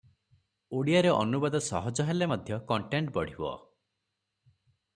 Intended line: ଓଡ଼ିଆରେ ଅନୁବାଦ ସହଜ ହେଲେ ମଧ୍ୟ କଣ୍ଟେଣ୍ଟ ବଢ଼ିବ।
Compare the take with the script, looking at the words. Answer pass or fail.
pass